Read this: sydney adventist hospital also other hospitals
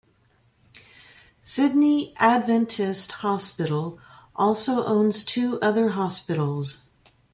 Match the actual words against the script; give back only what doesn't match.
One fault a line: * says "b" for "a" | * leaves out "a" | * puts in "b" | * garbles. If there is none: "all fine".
* puts in "owns two"